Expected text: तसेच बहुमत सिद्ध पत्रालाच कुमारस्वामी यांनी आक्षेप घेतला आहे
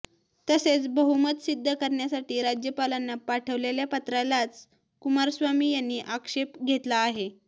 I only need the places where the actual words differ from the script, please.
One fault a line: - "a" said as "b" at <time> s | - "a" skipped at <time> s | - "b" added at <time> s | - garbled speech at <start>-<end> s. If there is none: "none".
- "करण्यासाठी राज्यपालांना पाठवलेल्या" added at 1.7 s